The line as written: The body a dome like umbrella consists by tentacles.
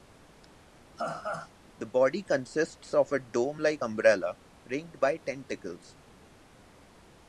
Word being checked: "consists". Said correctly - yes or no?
no